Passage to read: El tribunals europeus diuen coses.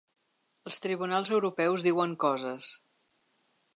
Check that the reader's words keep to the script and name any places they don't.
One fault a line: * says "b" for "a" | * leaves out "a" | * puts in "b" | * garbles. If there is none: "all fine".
* says "Els" for "El"